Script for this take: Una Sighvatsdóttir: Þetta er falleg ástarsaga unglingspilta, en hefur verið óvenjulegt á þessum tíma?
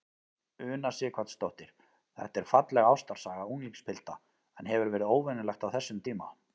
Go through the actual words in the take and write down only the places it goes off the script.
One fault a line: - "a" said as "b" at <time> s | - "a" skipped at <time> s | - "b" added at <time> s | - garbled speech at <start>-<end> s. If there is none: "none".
none